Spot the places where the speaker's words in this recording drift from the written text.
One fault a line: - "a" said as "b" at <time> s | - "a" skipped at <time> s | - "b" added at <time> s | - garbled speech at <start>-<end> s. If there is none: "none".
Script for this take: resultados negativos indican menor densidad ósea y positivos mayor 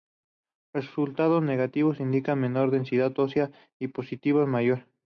none